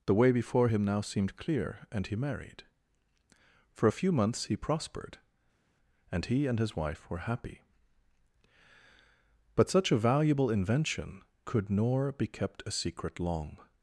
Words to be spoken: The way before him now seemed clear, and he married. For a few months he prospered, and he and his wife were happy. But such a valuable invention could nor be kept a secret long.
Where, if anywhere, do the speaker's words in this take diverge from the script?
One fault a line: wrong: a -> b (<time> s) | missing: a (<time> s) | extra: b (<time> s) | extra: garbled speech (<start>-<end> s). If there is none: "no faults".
no faults